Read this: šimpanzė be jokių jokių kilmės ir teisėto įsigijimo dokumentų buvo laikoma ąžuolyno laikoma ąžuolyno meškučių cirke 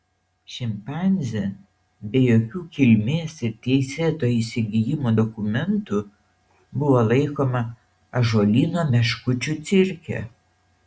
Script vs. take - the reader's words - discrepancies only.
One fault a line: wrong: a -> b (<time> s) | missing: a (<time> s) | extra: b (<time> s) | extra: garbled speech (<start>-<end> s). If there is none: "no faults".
missing: jokių (2.6 s)
missing: laikoma ąžuolyno (8.9 s)